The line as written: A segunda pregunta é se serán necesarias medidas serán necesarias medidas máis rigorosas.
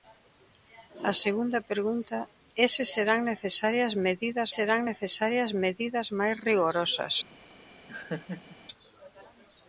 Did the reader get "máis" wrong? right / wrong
right